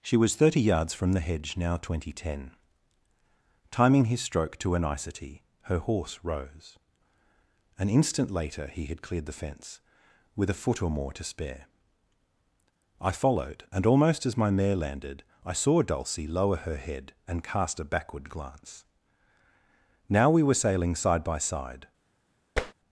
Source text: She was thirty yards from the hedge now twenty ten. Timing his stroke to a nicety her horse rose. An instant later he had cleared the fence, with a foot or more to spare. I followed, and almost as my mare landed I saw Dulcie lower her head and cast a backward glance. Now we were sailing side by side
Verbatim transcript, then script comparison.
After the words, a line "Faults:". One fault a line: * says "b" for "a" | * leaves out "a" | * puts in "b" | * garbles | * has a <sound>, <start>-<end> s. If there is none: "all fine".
She was thirty yards from the hedge now twenty ten. Timing his stroke to a nicety her horse rose. An instant later he had cleared the fence, with a foot or more to spare. I followed, and almost as my mare landed I saw Dulcie lower her head and cast a backward glance. Now we were sailing side by side
Faults:
* has a tap, 22.6-22.7 s